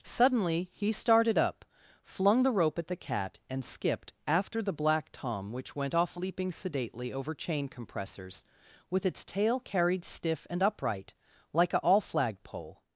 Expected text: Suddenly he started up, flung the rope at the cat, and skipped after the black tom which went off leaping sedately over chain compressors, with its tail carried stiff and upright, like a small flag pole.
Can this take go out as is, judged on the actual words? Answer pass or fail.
fail